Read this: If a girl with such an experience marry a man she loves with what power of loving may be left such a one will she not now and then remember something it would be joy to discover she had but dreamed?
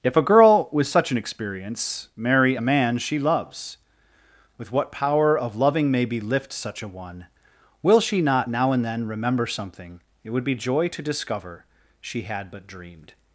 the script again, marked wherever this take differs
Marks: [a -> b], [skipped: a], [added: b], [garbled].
If a girl with such an experience marry a man she loves with what power of loving may be [left -> lift] such a one will she not now and then remember something it would be joy to discover she had but dreamed?